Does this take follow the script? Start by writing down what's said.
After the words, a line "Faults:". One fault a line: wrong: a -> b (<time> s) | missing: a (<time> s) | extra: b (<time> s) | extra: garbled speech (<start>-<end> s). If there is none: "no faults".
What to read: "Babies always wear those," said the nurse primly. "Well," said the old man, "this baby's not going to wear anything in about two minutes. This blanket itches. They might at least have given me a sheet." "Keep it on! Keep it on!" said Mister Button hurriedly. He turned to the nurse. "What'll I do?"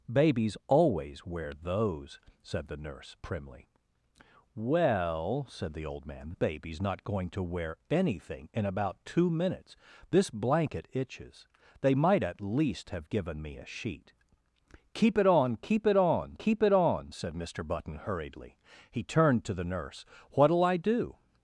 "Babies always wear those," said the nurse primly. "Well," said the old man, "baby's not going to wear anything in about two minutes. This blanket itches. They might at least have given me a sheet." "Keep it on! Keep it on keep it on!" said Mister Button hurriedly. He turned to the nurse. "What'll I do?"
Faults:
missing: this (6.4 s)
extra: keep it on (16.3 s)